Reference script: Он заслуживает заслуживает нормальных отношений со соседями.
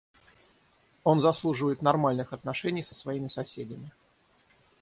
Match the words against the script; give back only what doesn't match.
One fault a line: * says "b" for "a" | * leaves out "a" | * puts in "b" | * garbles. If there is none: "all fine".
* leaves out "заслуживает"
* puts in "своими"